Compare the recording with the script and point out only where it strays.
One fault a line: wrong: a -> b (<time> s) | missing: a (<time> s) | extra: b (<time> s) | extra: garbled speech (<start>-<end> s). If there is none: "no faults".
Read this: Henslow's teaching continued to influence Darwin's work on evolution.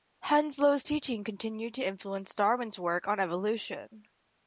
no faults